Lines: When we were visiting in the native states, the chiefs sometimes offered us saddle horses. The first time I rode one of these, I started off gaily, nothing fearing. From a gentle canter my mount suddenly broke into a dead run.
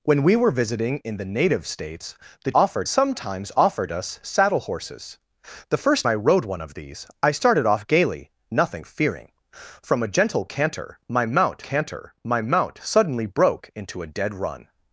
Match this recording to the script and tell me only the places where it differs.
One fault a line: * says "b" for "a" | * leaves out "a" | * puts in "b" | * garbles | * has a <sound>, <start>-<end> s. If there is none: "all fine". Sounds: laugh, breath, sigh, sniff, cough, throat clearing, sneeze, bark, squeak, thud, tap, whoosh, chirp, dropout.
* says "offered" for "chiefs"
* leaves out "time"
* puts in "canter my mount"